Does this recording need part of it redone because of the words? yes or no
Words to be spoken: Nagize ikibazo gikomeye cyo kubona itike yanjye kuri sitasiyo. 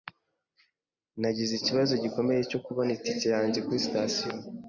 no